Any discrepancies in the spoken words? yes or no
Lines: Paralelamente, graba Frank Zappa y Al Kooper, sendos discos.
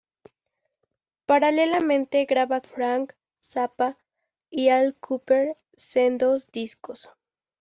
no